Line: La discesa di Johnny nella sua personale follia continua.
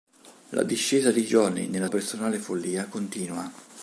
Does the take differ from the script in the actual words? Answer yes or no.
yes